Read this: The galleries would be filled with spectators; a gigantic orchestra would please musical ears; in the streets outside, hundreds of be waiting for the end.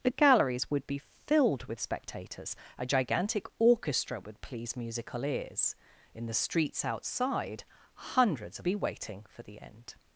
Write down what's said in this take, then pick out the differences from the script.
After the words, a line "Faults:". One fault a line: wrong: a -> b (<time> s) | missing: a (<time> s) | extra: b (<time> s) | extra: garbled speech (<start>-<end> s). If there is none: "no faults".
The galleries would be filled with spectators; a gigantic orchestra would please musical ears; in the streets outside, hundreds of be waiting for the end.
Faults:
no faults